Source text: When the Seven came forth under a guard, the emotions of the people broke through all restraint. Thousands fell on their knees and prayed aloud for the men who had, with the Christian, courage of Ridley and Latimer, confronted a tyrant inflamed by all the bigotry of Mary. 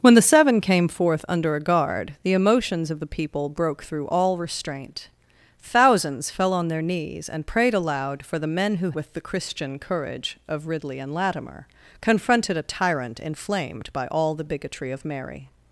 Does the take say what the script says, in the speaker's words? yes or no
no